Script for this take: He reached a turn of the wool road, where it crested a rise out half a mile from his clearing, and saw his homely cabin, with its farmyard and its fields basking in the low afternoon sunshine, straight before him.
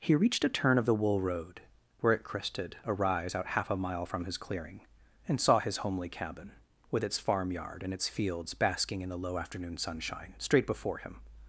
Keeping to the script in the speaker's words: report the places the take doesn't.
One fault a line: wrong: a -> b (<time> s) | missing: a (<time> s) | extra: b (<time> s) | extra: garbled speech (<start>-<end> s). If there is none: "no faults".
no faults